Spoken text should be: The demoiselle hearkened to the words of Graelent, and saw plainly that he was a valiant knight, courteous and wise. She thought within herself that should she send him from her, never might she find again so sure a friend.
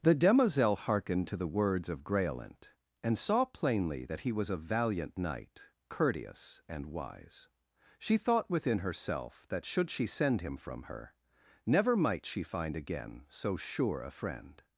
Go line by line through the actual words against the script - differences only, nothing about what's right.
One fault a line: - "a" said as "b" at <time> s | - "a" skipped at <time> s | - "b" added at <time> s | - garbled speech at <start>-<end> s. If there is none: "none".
none